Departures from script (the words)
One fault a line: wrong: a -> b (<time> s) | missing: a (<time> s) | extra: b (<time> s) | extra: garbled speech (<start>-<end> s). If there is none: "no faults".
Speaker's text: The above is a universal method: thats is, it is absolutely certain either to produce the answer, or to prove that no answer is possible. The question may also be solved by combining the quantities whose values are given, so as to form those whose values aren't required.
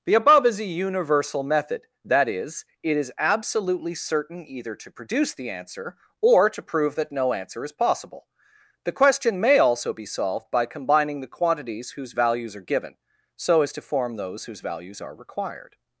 wrong: thats -> that (2.0 s)
wrong: aren't -> are (15.0 s)